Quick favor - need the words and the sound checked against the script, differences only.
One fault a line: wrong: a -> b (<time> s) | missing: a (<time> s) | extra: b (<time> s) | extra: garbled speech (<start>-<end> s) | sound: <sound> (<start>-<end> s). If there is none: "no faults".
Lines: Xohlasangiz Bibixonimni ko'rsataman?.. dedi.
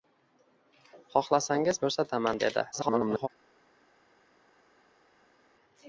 missing: Bibixonimni (1.8 s)
extra: garbled speech (2.7-3.3 s)